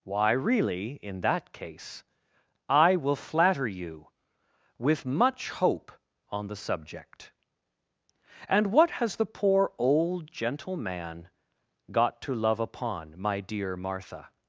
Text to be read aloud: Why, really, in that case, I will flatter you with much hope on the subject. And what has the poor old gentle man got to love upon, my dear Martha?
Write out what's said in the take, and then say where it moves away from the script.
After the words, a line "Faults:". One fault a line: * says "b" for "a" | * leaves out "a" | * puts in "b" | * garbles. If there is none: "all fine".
Why, really, in that case, I will flatter you with much hope on the subject. And what has the poor old gentle man got to love upon, my dear Martha?
Faults:
all fine